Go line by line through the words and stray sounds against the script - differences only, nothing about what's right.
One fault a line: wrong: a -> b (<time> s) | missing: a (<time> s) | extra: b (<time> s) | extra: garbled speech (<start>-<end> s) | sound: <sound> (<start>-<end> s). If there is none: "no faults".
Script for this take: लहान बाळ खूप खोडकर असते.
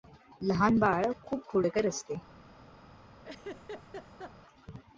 sound: laugh (3.2-4.3 s)